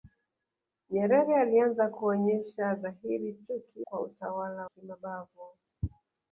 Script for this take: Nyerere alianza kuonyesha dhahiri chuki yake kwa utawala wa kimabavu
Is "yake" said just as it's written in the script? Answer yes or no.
no